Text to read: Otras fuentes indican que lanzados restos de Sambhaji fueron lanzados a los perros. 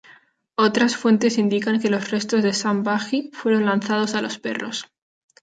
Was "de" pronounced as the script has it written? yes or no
yes